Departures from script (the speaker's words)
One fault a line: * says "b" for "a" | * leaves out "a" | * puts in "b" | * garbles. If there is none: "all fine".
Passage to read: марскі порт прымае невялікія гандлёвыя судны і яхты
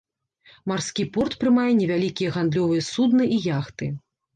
all fine